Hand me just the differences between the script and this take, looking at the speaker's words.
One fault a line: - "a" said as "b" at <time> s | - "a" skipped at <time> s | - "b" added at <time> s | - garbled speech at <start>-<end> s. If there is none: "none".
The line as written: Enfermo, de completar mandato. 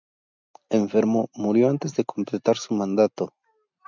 - "murió antes" added at 1.4 s
- "su" added at 2.6 s